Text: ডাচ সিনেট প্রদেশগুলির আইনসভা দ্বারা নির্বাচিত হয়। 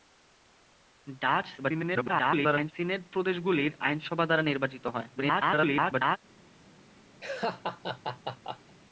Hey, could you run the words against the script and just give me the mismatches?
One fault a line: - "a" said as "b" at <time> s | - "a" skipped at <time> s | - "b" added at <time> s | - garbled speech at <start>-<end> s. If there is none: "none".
- garbled speech at 1.6-2.7 s
- garbled speech at 5.2-6.2 s